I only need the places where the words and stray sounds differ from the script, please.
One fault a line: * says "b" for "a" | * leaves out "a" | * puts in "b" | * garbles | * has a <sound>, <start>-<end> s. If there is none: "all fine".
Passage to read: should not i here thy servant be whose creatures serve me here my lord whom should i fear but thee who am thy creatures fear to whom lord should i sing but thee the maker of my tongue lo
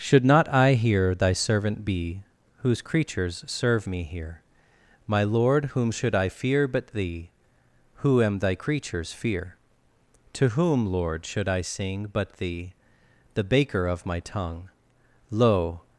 * says "baker" for "maker"